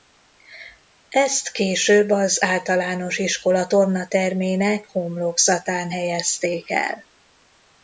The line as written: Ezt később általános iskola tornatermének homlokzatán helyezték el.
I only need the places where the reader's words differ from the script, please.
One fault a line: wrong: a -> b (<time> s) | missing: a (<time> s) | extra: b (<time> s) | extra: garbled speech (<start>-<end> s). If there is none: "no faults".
extra: az (2.1 s)